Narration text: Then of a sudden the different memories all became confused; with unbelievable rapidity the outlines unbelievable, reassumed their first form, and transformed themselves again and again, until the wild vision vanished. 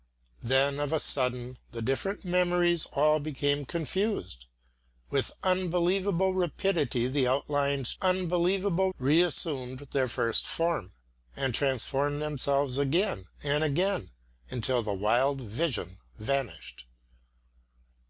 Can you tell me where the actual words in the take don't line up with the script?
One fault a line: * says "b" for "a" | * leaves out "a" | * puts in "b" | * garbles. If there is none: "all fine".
all fine